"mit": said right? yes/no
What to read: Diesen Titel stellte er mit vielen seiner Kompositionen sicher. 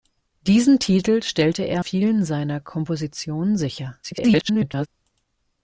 no